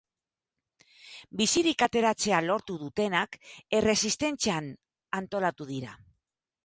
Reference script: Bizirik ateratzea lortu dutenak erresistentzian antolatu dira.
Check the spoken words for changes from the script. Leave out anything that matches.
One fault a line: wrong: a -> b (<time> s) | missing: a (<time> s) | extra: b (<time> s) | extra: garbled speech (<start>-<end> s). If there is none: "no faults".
no faults